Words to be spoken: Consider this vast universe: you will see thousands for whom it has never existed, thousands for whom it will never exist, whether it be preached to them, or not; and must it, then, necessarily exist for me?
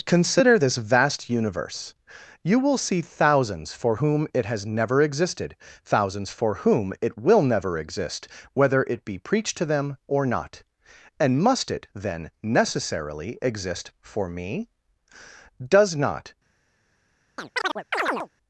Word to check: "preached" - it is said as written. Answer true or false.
true